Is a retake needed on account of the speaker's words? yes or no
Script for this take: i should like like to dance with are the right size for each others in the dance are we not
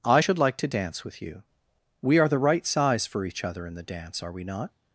yes